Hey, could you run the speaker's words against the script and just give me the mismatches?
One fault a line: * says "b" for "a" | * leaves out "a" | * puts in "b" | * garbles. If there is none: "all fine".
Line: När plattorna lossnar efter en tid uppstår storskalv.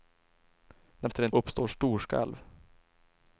* leaves out "plattorna lossnar"
* leaves out "tid"